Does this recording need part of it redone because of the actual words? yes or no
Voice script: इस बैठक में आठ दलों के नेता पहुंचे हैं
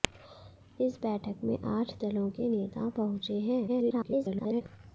yes